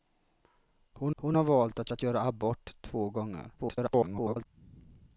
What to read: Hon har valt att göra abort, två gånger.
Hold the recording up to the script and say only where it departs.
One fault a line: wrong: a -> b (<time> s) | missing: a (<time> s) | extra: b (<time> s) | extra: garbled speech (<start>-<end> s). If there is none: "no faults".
extra: hon (1.2 s)
extra: att (1.9 s)
extra: garbled speech (3.6-4.5 s)